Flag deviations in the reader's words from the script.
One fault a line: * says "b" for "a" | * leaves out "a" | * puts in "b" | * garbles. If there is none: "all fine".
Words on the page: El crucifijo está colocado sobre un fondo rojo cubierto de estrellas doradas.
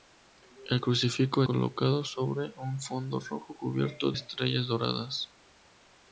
* leaves out "está"
* leaves out "de"